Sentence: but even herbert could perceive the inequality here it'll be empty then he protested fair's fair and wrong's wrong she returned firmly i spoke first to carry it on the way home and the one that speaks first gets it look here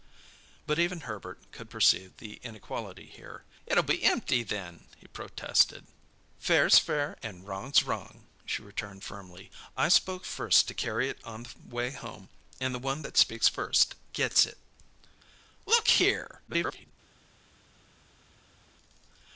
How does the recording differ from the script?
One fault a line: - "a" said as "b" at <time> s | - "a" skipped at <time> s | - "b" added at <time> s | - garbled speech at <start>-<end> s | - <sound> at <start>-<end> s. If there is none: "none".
- garbled speech at 16.5-16.9 s